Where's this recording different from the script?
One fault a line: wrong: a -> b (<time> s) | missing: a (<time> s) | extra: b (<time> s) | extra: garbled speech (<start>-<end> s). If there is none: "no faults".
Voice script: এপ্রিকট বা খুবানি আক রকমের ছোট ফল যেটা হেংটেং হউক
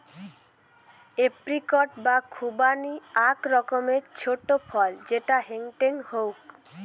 no faults